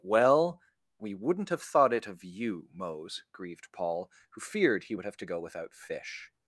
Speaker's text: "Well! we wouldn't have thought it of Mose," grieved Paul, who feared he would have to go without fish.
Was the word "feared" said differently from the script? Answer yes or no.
no